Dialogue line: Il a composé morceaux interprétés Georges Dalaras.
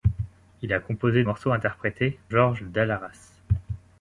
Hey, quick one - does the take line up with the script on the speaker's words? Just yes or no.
yes